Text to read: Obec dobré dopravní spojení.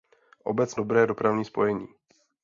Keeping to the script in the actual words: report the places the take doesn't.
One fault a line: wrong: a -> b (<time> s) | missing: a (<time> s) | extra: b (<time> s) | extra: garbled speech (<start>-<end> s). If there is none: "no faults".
no faults